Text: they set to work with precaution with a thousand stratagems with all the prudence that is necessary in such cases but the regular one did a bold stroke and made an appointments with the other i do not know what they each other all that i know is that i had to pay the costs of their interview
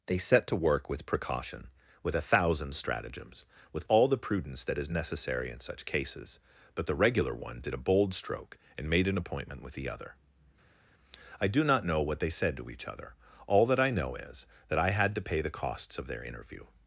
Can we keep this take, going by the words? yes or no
no